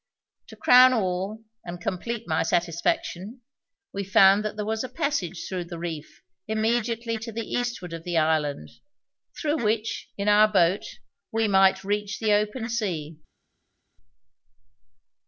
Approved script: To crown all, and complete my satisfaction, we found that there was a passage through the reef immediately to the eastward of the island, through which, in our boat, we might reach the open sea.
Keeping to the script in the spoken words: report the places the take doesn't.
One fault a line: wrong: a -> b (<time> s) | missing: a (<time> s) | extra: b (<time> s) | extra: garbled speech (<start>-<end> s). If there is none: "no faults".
no faults